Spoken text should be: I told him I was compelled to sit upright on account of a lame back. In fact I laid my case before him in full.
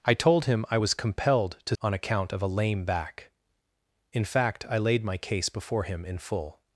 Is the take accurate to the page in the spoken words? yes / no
no